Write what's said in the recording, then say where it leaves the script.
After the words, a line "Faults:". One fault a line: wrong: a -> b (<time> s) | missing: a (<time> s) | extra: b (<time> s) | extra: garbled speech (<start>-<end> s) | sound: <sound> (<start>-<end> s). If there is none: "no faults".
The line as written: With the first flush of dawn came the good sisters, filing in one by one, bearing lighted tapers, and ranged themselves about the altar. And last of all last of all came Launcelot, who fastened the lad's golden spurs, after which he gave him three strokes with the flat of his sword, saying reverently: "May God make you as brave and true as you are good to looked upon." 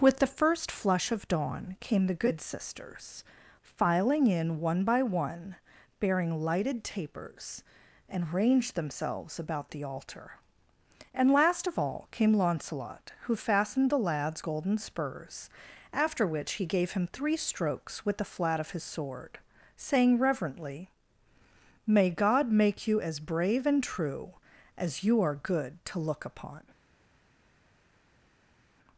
With the first flush of dawn came the good sisters, filing in one by one, bearing lighted tapers, and ranged themselves about the altar. And last of all came Launcelot, who fastened the lad's golden spurs, after which he gave him three strokes with the flat of his sword, saying reverently: "May God make you as brave and true as you are good to look upon."
Faults:
missing: last of all (12.1 s)
wrong: looked -> look (26.0 s)